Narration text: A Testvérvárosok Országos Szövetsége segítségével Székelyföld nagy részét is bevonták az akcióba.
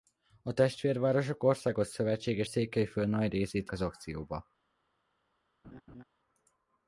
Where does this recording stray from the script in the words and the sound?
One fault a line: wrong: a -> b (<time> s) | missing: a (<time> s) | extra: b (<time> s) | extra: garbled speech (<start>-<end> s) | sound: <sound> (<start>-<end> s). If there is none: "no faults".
missing: segítségével (2.4 s)
missing: is bevonták (3.7 s)
sound: laugh (5.6-6.0 s)